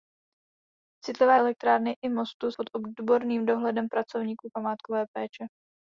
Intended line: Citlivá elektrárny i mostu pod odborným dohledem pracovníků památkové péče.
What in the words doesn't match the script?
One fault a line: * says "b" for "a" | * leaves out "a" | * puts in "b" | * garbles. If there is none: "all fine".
all fine